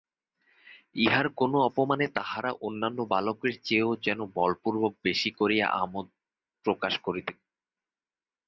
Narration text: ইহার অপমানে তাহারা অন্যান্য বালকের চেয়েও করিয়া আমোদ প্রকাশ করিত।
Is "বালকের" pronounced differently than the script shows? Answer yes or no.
no